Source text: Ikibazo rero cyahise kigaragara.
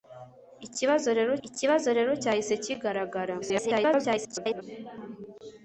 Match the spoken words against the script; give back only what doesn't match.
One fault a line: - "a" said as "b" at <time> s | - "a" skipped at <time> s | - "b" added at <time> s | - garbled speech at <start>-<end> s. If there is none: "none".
- "ikibazo rero" added at 1.5 s
- garbled speech at 3.4-4.6 s